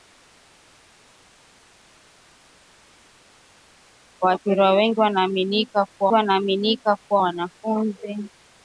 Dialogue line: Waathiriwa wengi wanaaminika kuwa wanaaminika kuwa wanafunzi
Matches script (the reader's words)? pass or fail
pass